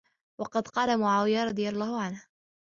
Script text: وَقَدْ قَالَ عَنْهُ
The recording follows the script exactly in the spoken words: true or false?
false